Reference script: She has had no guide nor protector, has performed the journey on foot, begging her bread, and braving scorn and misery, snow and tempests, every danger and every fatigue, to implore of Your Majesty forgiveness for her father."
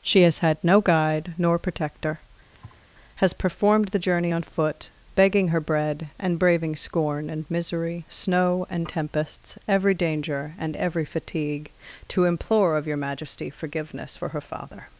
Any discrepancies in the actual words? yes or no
no